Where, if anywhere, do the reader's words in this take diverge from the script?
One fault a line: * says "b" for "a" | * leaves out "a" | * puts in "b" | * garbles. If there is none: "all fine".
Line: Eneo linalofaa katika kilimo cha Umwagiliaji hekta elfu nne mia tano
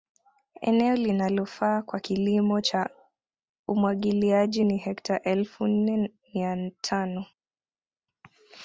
* says "kwa" for "katika"
* puts in "ni"